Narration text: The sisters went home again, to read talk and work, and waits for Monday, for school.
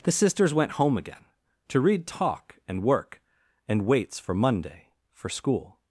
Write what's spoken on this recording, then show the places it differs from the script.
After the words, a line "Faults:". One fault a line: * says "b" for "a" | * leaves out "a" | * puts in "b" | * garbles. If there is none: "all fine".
The sisters went home again, to read talk and work, and waits for Monday, for school.
Faults:
all fine